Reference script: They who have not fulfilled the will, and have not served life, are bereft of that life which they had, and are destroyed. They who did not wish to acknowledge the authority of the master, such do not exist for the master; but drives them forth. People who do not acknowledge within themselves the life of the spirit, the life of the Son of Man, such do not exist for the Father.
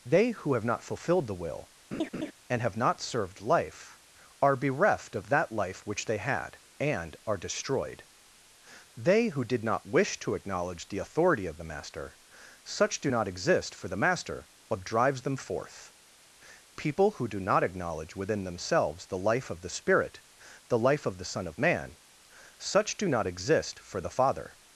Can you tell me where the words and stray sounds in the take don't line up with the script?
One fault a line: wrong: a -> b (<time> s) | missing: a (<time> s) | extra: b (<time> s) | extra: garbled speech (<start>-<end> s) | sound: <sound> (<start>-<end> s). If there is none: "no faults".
sound: laugh (1.9-2.3 s)